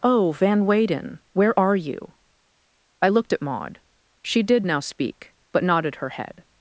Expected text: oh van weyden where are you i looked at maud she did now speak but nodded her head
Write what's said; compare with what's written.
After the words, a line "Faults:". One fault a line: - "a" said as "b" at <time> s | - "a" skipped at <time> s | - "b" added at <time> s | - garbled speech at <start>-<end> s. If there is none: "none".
oh van weyden where are you i looked at maud she did now speak but nodded her head
Faults:
none